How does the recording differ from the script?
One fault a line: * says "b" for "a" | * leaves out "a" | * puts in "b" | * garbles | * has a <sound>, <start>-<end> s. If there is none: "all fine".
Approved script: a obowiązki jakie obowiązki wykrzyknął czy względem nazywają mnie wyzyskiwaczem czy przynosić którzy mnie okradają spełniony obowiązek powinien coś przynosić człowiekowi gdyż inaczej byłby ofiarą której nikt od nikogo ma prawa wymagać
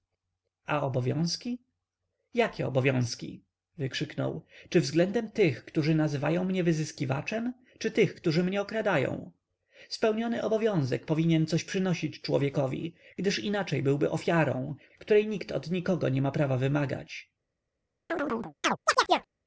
* puts in "tych którzy"
* says "tych" for "przynosić"
* puts in "nie"
* has a chirp, 18.1-19.3 s